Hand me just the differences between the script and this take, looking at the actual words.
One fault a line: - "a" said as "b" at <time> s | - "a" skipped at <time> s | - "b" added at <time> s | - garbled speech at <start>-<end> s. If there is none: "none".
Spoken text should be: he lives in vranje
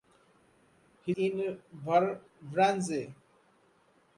- "lives" skipped at 1.1 s